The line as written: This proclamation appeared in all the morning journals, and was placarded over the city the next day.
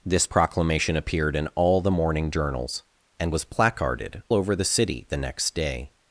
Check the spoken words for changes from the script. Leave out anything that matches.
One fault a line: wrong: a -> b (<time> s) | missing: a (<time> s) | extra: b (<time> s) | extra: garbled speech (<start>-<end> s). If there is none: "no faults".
no faults